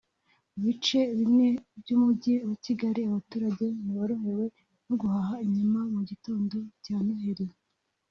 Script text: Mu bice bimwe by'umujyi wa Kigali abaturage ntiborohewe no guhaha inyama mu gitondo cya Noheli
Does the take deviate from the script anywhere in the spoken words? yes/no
no